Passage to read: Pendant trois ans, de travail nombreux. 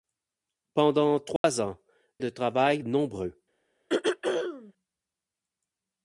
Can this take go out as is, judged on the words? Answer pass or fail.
pass